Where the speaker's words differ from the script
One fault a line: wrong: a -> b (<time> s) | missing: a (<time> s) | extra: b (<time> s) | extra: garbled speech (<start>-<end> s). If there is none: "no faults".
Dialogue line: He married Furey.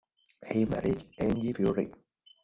extra: Angie (1.2 s)